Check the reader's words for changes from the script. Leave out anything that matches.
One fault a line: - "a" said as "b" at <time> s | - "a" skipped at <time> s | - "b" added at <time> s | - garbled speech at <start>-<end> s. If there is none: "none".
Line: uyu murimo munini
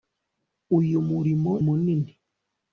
none